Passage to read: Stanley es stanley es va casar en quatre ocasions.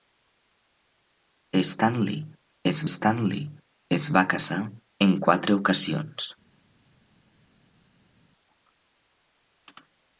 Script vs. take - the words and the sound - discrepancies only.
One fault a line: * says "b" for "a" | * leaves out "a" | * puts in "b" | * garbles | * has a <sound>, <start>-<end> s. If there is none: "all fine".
all fine